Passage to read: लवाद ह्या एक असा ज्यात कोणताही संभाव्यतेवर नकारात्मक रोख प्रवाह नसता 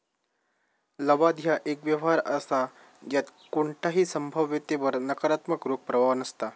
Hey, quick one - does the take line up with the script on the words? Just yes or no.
no